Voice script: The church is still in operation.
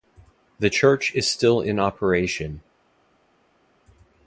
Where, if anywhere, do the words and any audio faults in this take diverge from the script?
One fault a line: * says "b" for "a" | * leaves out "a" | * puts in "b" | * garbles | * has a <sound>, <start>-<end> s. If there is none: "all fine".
all fine